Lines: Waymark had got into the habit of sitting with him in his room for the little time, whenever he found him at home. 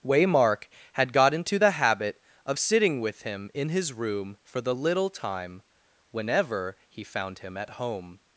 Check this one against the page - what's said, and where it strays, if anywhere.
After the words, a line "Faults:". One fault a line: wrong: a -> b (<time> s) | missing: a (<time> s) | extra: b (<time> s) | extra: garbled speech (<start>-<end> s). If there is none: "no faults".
Waymark had got into the habit of sitting with him in his room for the little time, whenever he found him at home.
Faults:
no faults